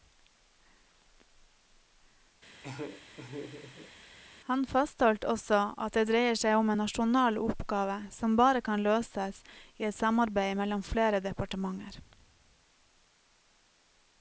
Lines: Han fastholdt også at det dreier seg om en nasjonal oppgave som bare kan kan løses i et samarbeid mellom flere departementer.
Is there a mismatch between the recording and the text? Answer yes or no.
yes